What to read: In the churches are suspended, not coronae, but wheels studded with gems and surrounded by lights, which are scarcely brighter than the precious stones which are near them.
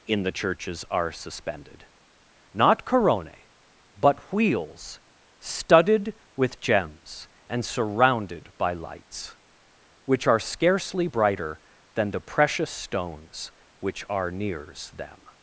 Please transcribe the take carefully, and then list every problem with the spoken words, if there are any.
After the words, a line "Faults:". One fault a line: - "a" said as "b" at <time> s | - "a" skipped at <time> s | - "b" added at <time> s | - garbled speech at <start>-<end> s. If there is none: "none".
In the churches are suspended, not coronae, but wheels studded with gems and surrounded by lights, which are scarcely brighter than the precious stones which are nears them.
Faults:
- "near" said as "nears" at 14.3 s